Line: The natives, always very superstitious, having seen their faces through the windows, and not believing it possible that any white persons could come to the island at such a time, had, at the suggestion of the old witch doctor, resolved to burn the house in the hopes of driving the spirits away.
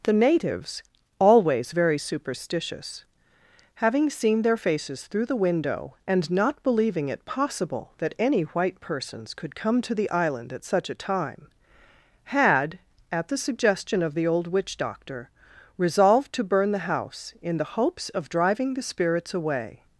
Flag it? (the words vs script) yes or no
yes